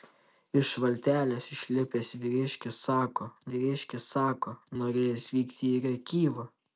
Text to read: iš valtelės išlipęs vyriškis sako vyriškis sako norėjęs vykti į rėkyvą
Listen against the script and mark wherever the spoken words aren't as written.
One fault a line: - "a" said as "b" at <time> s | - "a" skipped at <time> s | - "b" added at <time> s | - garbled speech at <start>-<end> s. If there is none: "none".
none